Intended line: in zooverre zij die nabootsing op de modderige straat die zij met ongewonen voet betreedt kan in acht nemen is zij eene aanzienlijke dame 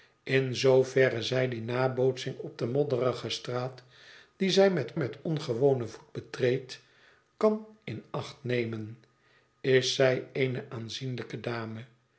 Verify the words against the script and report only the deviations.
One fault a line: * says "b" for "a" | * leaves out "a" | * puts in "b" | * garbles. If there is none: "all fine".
* puts in "met"